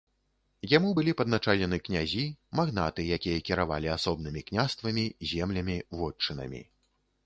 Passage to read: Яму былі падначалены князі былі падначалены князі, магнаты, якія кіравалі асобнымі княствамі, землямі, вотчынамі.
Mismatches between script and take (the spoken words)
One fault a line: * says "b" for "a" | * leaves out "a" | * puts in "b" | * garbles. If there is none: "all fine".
* leaves out "былі падначалены князі"